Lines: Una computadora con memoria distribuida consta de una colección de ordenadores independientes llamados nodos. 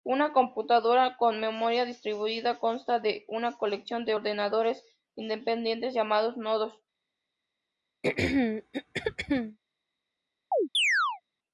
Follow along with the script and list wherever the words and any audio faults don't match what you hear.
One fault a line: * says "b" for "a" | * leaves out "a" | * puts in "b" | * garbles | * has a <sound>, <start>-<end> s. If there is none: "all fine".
* has a throat clearing, 8.0-9.6 s
* has a chirp, 10.5-11.2 s